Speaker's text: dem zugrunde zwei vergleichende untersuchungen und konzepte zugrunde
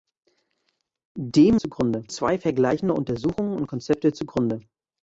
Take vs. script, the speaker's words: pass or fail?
pass